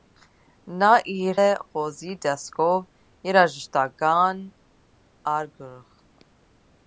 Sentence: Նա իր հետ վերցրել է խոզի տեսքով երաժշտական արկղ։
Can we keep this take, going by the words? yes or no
no